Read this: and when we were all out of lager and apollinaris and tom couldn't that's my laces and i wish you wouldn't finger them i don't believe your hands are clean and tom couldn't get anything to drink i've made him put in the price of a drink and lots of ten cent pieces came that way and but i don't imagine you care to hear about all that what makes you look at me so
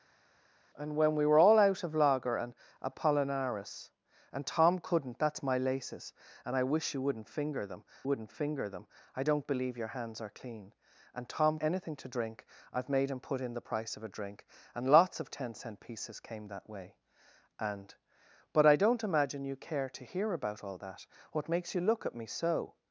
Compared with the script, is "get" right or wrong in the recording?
wrong